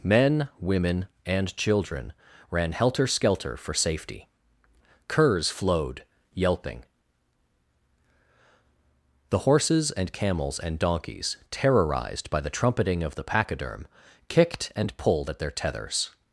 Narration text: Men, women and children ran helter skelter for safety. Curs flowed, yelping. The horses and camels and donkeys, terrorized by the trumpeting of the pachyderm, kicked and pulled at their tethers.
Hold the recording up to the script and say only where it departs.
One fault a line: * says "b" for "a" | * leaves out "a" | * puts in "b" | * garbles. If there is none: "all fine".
all fine